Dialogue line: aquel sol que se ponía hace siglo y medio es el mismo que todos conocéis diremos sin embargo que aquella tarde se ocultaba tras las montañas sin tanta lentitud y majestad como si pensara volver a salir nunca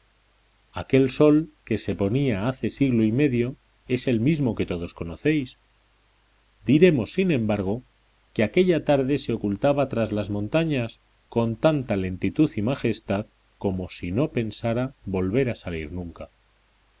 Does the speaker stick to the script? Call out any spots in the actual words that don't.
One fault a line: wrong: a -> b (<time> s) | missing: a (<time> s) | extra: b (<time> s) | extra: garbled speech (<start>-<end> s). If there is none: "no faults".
wrong: sin -> con (11.3 s)
extra: no (14.1 s)